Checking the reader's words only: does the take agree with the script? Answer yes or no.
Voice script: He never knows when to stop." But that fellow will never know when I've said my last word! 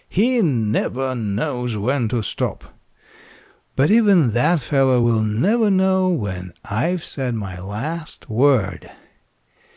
no